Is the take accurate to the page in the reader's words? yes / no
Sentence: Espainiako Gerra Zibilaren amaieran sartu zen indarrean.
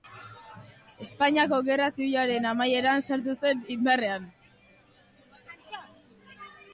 yes